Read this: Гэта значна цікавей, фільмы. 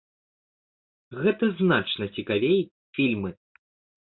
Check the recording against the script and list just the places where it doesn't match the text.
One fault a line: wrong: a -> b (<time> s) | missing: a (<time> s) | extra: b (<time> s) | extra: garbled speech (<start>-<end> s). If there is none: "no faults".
no faults